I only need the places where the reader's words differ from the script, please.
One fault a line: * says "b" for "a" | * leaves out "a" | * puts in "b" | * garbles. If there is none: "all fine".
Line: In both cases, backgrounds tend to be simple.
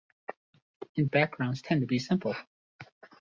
* leaves out "both cases"